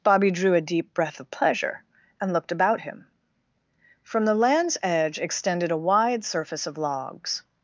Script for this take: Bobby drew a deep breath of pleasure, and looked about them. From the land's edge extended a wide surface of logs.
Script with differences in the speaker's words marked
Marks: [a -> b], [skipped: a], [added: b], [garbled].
Bobby drew a deep breath of pleasure, and looked about [them. -> him] From the land's edge extended a wide surface of logs.